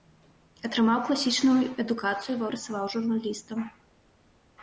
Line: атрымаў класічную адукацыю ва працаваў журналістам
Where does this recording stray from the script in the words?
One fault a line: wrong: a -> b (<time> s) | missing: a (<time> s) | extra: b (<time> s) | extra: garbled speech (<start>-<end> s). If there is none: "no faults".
no faults